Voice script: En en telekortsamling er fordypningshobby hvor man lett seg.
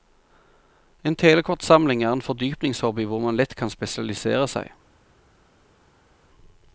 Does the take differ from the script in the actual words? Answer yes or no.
yes